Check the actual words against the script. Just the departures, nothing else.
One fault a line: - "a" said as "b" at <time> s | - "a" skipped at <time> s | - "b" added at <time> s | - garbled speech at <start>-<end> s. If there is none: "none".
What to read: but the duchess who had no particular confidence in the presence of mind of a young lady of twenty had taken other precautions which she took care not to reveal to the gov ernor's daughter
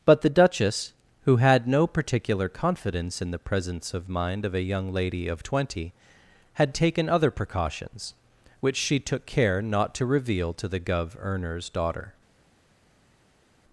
none